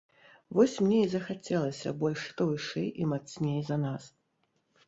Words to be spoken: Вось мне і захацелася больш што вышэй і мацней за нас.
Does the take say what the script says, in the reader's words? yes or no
yes